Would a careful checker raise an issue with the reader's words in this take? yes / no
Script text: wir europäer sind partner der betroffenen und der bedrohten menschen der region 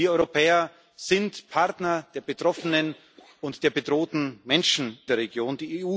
no